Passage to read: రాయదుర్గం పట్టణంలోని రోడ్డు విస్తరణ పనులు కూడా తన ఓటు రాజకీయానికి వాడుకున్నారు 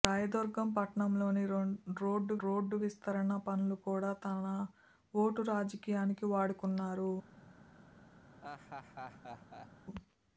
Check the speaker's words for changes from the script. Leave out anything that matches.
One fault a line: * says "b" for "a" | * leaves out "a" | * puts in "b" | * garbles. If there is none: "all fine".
* puts in "రోడ్డు"